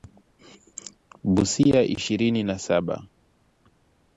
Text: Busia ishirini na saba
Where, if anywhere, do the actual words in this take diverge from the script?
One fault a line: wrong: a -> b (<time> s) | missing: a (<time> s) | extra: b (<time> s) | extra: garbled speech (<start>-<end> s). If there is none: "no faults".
no faults